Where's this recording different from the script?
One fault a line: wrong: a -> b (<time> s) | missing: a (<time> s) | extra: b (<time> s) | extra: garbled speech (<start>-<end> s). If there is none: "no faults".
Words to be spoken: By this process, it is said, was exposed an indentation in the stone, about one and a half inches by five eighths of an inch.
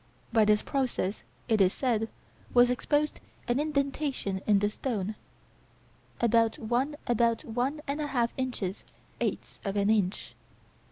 extra: about one (7.1 s)
missing: by five (8.8 s)